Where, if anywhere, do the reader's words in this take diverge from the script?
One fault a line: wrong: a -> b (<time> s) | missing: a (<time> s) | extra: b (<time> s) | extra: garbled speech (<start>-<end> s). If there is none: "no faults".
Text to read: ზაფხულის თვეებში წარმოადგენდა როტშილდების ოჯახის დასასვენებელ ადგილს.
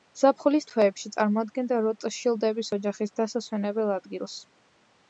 no faults